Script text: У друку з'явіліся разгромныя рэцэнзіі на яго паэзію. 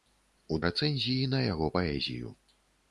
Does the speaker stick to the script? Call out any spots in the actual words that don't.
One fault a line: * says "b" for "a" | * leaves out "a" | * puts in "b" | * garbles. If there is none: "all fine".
* leaves out "друку з'явіліся разгромныя"